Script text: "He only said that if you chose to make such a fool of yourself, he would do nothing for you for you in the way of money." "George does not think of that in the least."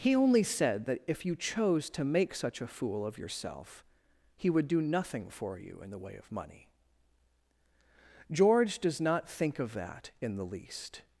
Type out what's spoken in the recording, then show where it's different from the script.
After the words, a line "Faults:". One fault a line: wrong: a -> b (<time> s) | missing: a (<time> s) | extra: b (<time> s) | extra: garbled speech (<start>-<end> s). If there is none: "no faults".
"He only said that if you chose to make such a fool of yourself, he would do nothing for you in the way of money." "George does not think of that in the least."
Faults:
missing: for you (5.8 s)